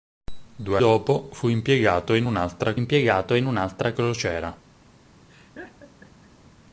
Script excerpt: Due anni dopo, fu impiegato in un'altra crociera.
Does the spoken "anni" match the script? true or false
false